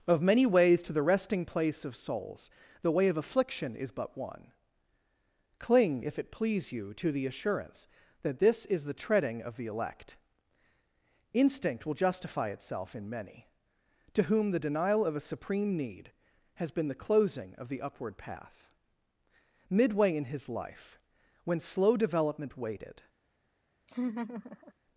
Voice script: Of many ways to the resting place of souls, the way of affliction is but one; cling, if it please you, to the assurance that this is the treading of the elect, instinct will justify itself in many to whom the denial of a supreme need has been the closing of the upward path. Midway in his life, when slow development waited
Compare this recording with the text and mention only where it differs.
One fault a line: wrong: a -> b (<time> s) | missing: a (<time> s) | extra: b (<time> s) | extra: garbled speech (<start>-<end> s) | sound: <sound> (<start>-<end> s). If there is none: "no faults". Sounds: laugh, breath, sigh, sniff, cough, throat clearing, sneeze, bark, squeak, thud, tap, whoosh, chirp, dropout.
sound: laugh (23.9-24.7 s)